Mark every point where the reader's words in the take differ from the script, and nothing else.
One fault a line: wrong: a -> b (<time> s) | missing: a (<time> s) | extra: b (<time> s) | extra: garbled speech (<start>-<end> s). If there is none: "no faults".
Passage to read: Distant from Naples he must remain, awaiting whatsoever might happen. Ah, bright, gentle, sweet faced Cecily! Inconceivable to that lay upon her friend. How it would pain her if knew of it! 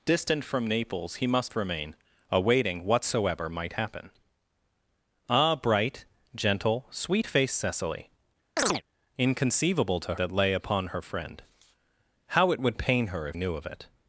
no faults